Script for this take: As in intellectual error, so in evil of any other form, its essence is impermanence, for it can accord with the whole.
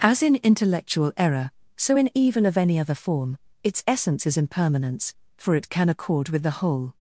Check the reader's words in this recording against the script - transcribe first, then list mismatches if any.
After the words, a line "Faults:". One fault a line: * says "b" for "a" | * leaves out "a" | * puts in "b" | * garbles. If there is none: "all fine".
As in intellectual error, so in evil of any other form, its essence is impermanence, for it can accord with the whole.
Faults:
all fine